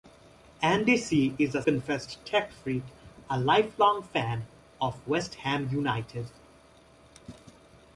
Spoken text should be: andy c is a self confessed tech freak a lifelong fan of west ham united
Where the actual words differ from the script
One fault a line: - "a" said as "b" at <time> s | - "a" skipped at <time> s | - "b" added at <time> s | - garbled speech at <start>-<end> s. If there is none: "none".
- "self" skipped at 1.6 s